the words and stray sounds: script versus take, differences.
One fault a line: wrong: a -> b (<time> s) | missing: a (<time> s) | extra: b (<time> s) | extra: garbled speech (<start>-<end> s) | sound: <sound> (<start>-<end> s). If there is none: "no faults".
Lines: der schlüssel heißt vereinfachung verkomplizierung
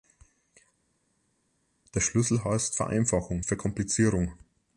no faults